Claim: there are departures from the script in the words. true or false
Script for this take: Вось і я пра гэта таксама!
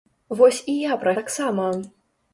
true